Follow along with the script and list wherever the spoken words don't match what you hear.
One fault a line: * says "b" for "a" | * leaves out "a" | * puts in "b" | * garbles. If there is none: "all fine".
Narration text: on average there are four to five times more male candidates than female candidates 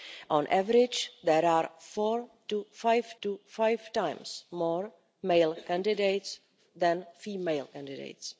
* puts in "to five"